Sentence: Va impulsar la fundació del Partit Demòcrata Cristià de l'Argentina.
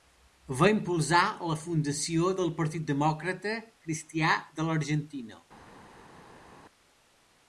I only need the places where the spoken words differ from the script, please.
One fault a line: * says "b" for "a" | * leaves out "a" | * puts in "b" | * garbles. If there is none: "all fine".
all fine